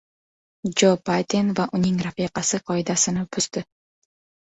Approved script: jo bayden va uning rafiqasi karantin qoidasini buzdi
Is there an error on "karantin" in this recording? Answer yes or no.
yes